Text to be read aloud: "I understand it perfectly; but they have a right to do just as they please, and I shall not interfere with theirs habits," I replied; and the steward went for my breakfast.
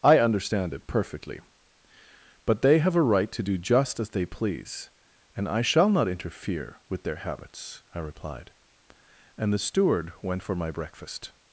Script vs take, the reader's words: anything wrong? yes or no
yes